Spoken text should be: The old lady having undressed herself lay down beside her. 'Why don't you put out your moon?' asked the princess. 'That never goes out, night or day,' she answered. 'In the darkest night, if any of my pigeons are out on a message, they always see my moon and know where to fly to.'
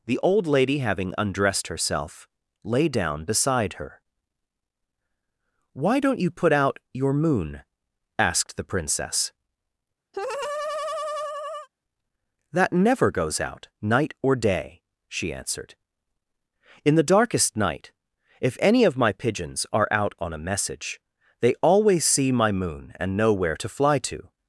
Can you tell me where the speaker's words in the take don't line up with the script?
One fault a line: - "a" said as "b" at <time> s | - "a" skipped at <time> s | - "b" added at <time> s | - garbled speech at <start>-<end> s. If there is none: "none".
none